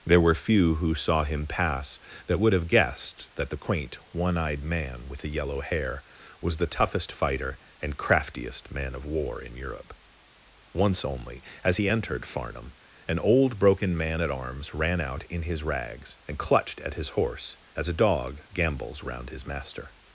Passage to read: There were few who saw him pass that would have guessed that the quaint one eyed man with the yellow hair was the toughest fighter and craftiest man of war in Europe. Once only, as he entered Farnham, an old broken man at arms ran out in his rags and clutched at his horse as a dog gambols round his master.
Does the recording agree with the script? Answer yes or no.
yes